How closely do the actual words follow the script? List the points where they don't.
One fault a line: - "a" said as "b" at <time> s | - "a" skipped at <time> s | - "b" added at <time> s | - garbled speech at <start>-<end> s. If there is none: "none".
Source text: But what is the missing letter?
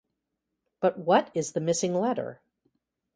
none